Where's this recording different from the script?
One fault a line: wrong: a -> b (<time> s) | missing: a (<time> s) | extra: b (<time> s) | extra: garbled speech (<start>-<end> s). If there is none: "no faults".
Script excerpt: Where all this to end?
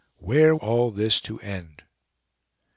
no faults